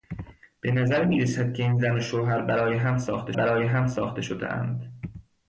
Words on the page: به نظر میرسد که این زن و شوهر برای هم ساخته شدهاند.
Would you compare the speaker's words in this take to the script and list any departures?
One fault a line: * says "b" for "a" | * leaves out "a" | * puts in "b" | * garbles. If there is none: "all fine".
* puts in "برای هم ساخته"